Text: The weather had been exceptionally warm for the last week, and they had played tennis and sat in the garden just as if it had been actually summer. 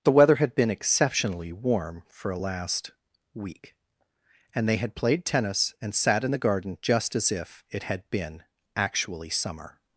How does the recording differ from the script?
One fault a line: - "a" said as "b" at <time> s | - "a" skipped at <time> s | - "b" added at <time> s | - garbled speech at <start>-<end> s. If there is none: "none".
- "the" said as "a" at 2.3 s